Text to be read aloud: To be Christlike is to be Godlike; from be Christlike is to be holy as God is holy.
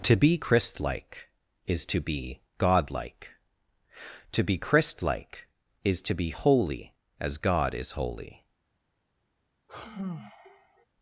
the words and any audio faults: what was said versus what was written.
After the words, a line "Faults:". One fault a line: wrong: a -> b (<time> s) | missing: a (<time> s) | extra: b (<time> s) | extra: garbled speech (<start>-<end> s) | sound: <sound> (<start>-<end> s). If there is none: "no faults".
To be Christlike is to be Godlike; to be Christlike is to be holy as God is holy.
Faults:
wrong: from -> to (4.3 s)
sound: sigh (9.7-10.9 s)